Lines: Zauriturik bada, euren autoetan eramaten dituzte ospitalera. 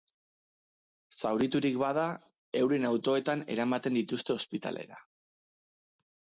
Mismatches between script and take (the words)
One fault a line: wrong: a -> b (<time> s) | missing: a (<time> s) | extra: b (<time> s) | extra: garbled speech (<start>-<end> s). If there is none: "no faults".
no faults